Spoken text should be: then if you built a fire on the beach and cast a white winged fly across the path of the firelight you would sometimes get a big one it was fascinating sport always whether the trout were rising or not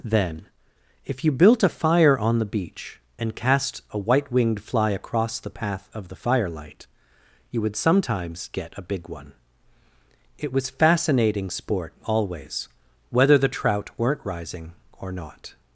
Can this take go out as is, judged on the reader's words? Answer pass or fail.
fail